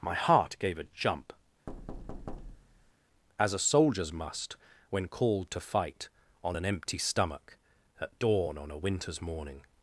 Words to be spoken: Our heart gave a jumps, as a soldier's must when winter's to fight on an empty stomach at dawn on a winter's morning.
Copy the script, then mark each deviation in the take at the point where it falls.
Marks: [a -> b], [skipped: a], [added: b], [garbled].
[Our -> My] heart gave a [jumps, -> jump] as a soldier's must when [winter's -> called] to fight on an empty stomach at dawn on a winter's morning.